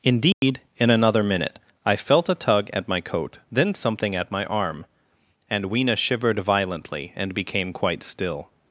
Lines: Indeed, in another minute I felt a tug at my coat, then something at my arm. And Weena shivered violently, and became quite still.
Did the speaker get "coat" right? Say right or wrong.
right